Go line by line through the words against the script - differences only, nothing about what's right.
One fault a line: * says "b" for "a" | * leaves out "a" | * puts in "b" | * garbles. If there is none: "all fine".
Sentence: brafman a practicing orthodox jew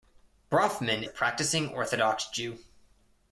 all fine